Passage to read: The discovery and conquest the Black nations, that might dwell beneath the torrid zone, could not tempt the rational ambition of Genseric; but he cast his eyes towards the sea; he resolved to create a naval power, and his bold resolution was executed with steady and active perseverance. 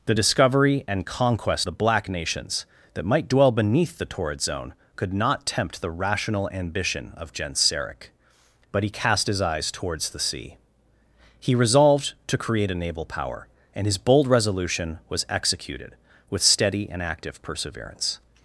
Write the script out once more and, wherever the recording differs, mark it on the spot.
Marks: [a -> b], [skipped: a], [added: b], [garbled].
The discovery and conquest the Black nations, that might dwell beneath the torrid zone, could not tempt the rational ambition of Genseric; but he cast his eyes towards the sea; he resolved to create a naval power, and his bold resolution was executed with steady and active perseverance.